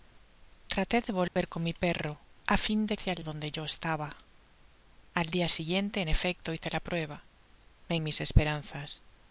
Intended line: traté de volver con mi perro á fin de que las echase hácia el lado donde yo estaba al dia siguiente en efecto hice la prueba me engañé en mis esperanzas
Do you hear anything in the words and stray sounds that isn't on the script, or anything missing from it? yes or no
yes